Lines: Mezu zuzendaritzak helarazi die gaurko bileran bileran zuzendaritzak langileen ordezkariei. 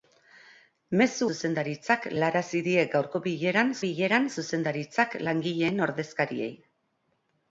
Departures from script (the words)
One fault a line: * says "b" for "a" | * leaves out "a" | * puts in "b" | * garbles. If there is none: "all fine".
all fine